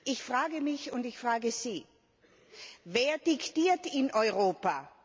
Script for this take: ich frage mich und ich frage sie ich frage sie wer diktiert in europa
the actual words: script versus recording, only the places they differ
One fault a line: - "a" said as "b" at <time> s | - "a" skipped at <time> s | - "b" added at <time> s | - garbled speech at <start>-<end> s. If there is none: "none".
- "ich frage sie" skipped at 1.9 s